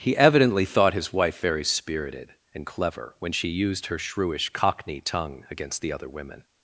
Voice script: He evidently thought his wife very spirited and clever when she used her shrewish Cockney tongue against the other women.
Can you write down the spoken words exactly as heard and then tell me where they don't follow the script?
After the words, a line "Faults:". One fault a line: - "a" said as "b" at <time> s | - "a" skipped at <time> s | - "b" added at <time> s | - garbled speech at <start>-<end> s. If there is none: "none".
He evidently thought his wife very spirited and clever when she used her shrewish Cockney tongue against the other women.
Faults:
none